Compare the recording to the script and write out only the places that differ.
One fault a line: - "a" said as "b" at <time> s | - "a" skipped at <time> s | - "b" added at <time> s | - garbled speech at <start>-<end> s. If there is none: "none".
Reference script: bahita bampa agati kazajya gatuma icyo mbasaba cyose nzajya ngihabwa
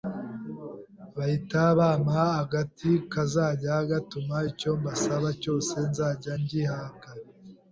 none